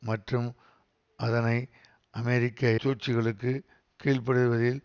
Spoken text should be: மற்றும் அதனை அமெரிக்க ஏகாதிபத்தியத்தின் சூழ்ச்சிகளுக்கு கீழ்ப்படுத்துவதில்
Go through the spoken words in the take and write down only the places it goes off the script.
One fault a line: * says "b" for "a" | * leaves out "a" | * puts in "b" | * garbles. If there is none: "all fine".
* leaves out "ஏகாதிபத்தியத்தின்"